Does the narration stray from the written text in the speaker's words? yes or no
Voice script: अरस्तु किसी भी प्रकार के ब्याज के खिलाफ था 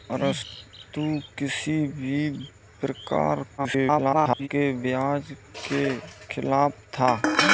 yes